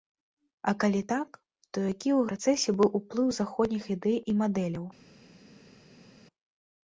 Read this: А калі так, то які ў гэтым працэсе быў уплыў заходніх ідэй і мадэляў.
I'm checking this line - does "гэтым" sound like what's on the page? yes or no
no